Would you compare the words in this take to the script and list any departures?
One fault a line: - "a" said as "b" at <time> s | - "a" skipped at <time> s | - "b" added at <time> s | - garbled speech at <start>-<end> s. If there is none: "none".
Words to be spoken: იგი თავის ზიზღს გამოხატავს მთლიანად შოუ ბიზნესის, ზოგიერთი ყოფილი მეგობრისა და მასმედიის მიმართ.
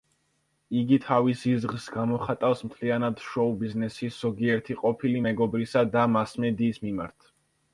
none